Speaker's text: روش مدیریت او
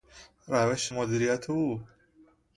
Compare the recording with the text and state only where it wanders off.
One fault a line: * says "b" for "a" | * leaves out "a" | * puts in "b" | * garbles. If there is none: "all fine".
all fine